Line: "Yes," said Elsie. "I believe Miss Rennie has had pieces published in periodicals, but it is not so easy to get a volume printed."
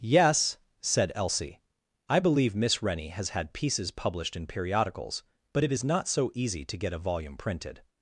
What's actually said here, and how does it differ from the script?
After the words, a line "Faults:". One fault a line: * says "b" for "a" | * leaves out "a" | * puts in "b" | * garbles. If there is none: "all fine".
"Yes," said Elsie. "I believe Miss Rennie has had pieces published in periodicals, but it is not so easy to get a volume printed."
Faults:
all fine